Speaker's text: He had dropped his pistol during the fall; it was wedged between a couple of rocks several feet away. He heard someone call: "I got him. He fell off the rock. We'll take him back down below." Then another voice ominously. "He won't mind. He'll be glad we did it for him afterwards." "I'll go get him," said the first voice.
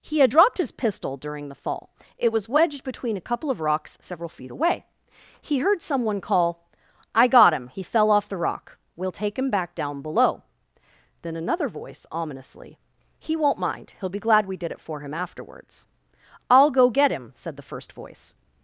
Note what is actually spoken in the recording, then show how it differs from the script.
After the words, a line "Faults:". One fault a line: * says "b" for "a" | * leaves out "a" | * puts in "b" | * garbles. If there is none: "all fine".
He had dropped his pistol during the fall; it was wedged between a couple of rocks several feet away. He heard someone call: "I got him. He fell off the rock. We'll take him back down below." Then another voice ominously. "He won't mind. He'll be glad we did it for him afterwards." "I'll go get him," said the first voice.
Faults:
all fine